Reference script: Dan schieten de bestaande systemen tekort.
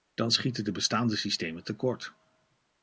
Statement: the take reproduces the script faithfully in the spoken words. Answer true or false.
true